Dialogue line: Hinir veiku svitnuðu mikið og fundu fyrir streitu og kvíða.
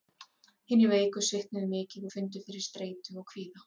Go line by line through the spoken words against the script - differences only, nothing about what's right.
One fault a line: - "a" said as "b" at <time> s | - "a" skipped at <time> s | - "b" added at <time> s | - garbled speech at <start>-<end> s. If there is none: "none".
none